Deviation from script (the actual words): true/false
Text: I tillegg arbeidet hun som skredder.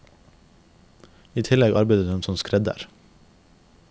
false